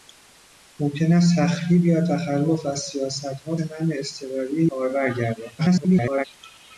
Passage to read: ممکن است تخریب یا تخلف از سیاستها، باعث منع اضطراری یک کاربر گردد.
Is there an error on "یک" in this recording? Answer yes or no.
yes